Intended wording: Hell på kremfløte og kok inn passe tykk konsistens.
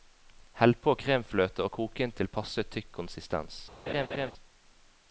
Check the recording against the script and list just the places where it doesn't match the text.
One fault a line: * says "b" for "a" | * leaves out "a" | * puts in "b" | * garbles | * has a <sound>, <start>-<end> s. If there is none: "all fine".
* puts in "til"
* has a laugh, 3.9-4.3 s